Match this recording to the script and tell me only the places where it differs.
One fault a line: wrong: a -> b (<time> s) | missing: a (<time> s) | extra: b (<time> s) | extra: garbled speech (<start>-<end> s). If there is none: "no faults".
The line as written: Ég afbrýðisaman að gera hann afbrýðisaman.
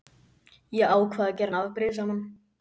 wrong: afbrýðisaman -> ákvað (0.9 s)